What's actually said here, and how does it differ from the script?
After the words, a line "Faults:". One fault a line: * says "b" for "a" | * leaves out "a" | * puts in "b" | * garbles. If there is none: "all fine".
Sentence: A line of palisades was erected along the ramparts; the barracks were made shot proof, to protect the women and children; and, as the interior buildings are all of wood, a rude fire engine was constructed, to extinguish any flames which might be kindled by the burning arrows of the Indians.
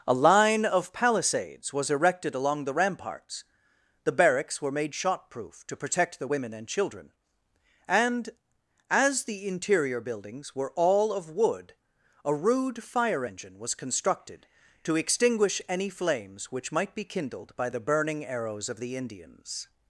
A line of palisades was erected along the ramparts; the barracks were made shot proof, to protect the women and children; and, as the interior buildings were all of wood, a rude fire engine was constructed, to extinguish any flames which might be kindled by the burning arrows of the Indians.
Faults:
* says "were" for "are"